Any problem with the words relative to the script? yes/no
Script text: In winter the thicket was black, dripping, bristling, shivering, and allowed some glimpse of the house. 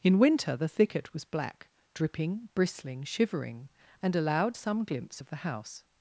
no